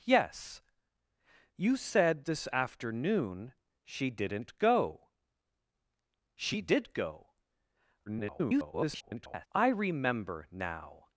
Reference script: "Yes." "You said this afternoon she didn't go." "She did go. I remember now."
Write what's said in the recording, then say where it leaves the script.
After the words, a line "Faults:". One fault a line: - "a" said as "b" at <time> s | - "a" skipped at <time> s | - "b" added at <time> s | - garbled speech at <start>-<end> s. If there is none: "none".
"Yes." "You said this afternoon she didn't go." "She did go. [garbled] I remember now."
Faults:
- garbled speech at 8.1-9.5 s